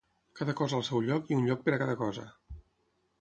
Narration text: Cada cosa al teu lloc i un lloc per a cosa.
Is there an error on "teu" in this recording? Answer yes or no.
yes